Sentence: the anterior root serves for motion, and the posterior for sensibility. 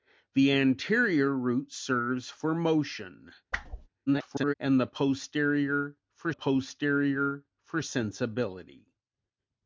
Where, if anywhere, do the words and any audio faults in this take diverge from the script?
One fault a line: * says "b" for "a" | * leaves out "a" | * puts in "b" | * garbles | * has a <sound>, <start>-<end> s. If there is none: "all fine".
* has a whoosh, 3.5-3.9 s
* garbles
* puts in "posterior for"